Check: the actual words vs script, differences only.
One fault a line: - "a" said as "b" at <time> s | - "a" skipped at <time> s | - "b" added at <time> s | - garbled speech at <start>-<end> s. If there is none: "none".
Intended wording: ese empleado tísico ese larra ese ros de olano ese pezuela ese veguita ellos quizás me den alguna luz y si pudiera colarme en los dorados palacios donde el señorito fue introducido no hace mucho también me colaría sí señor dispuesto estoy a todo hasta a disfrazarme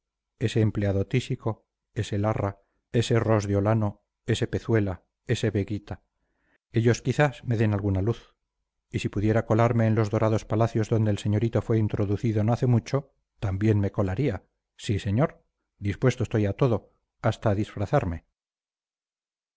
none